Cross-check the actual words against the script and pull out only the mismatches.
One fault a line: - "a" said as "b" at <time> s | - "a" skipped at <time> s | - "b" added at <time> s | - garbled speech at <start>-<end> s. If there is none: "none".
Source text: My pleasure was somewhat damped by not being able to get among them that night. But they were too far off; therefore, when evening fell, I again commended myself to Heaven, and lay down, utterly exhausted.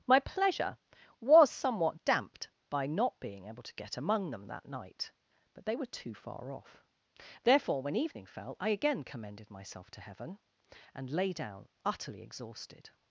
none